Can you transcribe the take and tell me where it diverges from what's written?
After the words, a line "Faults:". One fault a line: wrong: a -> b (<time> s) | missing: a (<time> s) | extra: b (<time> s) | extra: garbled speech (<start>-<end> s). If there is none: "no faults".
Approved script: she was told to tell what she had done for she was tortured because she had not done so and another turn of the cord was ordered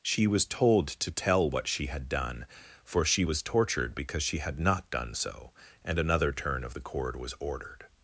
she was told to tell what she had done for she was tortured because she had not done so and another turn of the cord was ordered
Faults:
no faults